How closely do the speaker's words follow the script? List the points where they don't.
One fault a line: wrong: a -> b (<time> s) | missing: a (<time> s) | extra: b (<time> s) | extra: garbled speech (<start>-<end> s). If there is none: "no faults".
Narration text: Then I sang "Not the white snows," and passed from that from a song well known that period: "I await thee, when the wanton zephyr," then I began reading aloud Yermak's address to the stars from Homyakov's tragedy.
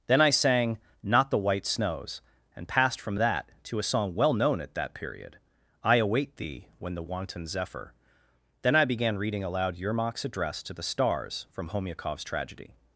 wrong: from -> to (3.6 s)
extra: at (4.6 s)